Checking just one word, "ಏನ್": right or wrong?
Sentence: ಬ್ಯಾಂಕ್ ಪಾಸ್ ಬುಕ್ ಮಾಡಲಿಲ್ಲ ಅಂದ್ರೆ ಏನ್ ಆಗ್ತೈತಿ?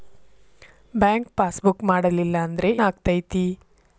wrong